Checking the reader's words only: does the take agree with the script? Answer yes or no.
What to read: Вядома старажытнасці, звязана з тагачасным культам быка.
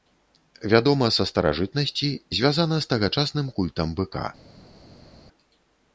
no